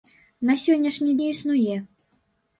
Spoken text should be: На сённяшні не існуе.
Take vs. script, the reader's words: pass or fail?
pass